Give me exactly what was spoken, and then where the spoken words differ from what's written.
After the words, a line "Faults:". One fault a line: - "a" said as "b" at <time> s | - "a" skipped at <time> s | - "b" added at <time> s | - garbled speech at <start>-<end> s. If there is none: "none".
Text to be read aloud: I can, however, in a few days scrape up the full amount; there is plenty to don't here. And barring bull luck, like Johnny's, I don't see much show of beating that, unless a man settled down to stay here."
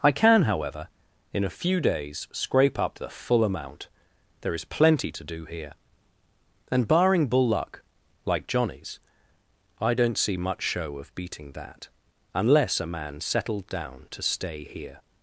I can, however, in a few days scrape up the full amount; there is plenty to do here. And barring bull luck, like Johnny's, I don't see much show of beating that, unless a man settled down to stay here."
Faults:
- "don't" said as "do" at 5.2 s